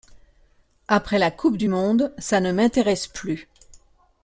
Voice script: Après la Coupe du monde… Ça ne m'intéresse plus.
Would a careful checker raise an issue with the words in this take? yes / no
no